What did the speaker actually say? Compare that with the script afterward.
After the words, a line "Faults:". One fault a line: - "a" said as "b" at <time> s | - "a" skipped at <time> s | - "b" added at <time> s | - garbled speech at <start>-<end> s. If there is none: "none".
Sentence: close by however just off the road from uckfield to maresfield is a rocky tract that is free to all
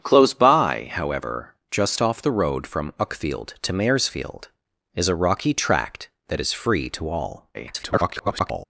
close by however just off the road from uckfield to maresfield is a rocky tract that is free to all [garbled]
Faults:
- garbled speech at 7.5-8.7 s